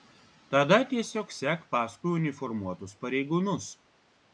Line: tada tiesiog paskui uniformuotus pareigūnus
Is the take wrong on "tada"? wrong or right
right